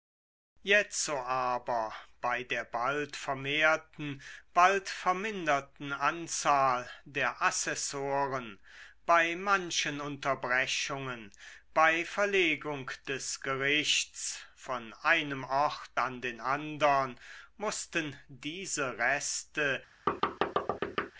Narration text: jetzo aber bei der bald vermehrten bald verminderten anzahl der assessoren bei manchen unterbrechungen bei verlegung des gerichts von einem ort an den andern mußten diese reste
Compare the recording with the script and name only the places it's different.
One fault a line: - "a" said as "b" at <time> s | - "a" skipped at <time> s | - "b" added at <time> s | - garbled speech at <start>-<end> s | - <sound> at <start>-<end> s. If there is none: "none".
- thud at 20.1-21.1 s